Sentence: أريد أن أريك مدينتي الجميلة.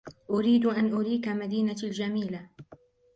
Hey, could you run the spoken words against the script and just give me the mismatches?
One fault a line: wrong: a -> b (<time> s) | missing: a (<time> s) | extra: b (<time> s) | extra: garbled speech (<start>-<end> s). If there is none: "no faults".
no faults